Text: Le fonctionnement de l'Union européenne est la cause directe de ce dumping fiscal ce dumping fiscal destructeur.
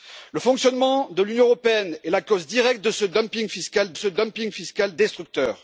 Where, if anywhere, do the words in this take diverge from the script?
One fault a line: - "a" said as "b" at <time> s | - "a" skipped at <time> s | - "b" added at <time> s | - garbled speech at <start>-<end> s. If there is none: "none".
none